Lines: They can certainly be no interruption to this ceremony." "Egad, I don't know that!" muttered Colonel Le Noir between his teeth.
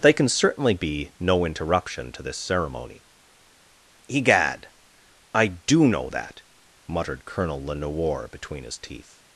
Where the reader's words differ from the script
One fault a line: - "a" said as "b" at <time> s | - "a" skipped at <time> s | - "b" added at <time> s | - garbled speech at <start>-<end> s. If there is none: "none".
- "don't" said as "do" at 5.5 s